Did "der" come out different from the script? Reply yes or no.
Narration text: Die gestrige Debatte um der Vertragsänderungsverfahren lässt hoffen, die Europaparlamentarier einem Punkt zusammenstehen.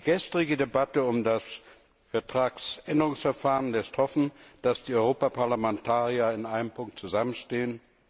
yes